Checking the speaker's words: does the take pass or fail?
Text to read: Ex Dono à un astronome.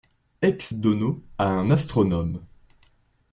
pass